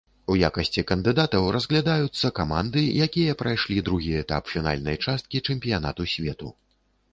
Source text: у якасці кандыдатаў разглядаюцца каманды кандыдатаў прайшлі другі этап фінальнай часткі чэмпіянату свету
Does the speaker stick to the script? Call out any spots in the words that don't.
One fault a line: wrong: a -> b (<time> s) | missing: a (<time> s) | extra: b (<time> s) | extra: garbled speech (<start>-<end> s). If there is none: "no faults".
wrong: кандыдатаў -> якія (3.1 s)